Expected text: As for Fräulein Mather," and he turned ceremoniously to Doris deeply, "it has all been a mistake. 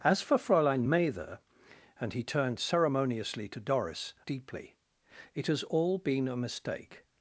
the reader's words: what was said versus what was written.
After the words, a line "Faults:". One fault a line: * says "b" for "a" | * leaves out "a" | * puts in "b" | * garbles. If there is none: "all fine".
As for Fräulein Mather," and he turned ceremoniously to Doris deeply, "it has all been a mistake.
Faults:
all fine